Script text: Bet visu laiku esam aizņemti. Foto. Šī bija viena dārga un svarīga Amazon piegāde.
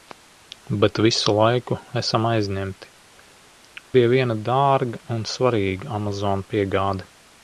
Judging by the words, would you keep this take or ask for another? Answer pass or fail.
fail